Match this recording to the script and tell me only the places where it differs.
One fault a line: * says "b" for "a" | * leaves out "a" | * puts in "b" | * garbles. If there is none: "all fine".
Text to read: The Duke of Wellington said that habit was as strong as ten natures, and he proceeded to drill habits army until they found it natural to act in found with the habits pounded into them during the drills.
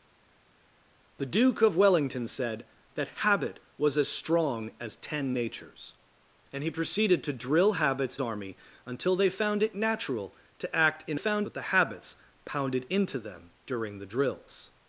all fine